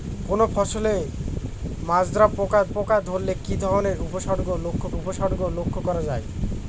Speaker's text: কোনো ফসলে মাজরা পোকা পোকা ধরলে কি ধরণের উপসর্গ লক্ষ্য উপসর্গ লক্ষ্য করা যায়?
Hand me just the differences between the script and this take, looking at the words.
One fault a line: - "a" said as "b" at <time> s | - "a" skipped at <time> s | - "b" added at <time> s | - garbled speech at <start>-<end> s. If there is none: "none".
none